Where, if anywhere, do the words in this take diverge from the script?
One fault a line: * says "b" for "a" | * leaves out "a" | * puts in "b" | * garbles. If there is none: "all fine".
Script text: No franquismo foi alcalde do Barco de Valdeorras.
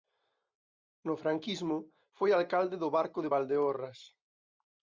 all fine